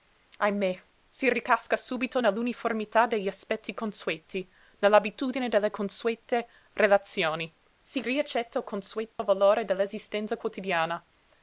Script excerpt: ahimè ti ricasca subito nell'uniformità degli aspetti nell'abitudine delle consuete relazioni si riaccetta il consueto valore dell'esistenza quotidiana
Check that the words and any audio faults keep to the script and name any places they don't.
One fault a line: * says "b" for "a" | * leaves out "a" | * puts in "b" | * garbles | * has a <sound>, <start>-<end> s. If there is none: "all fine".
* says "si" for "ti"
* puts in "consueti"
* has a dropout, 9.1-9.2 s